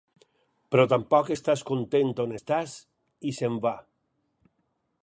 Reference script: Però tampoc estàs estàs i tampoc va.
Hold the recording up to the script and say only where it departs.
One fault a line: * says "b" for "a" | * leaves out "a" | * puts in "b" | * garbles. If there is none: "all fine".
* puts in "content on"
* says "s"en" for "tampoc"